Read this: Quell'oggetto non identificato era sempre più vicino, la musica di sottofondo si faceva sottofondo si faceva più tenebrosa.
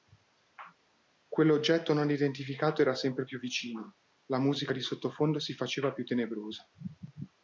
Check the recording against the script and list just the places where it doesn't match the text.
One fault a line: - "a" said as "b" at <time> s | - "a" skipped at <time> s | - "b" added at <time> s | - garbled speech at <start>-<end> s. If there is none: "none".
- "sottofondo si faceva" skipped at 5.9 s